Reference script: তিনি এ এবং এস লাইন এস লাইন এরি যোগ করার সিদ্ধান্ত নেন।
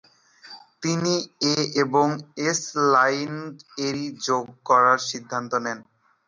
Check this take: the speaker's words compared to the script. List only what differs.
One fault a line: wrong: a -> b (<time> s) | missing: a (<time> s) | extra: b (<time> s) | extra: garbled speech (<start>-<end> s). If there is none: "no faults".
missing: এস লাইন (3.3 s)